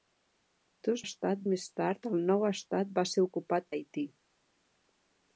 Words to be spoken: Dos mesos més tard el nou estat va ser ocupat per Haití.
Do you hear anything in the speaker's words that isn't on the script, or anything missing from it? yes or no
yes